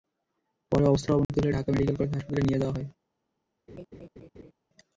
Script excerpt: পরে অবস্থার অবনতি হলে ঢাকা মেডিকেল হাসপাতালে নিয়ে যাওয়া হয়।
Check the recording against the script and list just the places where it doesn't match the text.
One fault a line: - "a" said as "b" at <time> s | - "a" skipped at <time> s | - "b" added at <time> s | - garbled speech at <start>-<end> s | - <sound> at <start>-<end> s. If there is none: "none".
- dropout at 1.2-1.3 s
- "কলেজ" added at 2.0 s
- laugh at 3.7-4.5 s